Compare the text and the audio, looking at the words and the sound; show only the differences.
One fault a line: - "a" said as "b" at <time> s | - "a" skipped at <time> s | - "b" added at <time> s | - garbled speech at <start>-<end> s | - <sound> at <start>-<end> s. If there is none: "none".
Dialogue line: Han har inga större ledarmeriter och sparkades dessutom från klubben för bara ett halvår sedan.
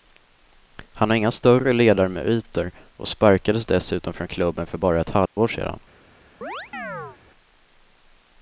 - dropout at 5.3-5.4 s
- chirp at 6.4-7.2 s